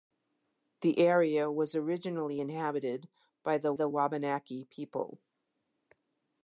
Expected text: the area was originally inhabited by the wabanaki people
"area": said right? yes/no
yes